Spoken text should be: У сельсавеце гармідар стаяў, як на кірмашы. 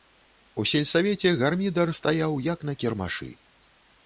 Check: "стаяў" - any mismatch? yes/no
no